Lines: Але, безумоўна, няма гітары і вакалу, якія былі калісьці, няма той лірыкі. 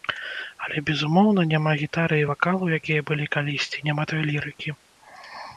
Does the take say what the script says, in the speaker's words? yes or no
yes